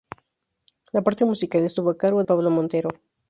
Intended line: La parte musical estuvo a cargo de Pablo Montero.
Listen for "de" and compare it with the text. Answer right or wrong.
wrong